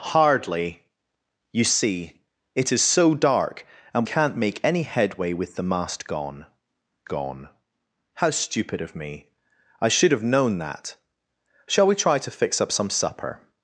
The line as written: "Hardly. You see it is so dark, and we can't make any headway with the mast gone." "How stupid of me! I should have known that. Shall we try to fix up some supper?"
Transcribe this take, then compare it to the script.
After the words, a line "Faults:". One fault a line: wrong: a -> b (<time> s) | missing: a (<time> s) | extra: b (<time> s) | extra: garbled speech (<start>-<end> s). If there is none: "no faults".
"Hardly. You see it is so dark, and can't make any headway with the mast gone gone." "How stupid of me! I should have known that. Shall we try to fix up some supper?"
Faults:
missing: we (4.0 s)
extra: gone (7.1 s)